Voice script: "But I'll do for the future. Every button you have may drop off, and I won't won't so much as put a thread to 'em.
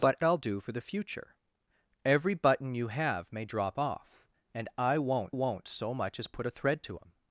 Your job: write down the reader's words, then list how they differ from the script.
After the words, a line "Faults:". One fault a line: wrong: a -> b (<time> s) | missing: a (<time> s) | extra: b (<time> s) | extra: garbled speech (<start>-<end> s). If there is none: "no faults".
"But I'll do for the future. Every button you have may drop off, and I won't won't so much as put a thread to 'em.
Faults:
no faults